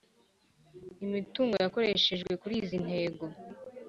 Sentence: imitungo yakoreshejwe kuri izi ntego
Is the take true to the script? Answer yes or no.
yes